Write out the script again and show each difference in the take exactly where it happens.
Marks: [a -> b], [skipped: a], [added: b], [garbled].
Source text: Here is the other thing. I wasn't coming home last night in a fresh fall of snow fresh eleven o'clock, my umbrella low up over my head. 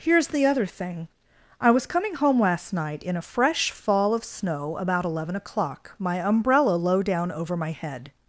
Here is the other thing. I [wasn't -> was] coming home last night in a fresh fall of snow [fresh -> about] eleven o'clock, my umbrella low [up -> down] over my head.